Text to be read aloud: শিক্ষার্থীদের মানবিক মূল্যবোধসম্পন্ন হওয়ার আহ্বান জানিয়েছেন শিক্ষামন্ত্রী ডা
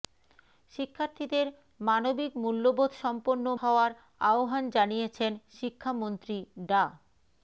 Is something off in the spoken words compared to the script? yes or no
no